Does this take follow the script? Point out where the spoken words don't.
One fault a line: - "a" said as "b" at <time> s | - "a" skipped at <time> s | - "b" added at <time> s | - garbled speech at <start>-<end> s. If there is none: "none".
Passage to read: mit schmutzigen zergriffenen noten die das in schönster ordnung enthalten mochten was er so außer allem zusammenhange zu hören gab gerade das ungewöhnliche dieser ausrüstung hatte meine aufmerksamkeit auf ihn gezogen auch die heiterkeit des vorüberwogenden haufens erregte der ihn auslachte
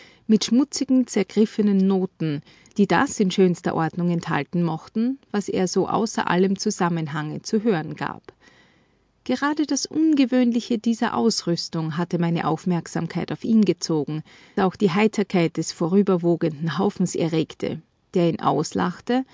none